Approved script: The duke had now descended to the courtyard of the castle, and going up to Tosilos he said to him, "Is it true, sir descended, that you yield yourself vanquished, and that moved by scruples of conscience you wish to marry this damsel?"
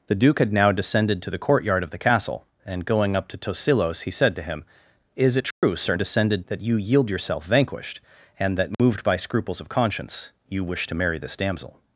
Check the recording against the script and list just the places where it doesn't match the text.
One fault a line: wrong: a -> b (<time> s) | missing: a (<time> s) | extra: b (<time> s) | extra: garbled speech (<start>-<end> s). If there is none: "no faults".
no faults